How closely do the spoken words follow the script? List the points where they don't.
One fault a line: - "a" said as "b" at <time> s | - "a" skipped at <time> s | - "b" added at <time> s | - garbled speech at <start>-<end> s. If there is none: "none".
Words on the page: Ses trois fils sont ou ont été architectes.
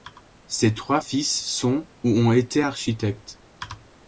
none